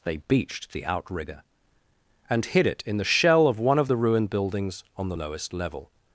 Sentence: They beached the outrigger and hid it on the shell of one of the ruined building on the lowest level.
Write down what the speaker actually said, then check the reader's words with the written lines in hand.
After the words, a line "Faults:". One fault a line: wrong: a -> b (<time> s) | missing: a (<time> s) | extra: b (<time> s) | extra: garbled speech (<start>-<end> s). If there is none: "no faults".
They beached the outrigger and hid it in the shell of one of the ruined buildings on the lowest level.
Faults:
wrong: on -> in (2.9 s)
wrong: building -> buildings (4.3 s)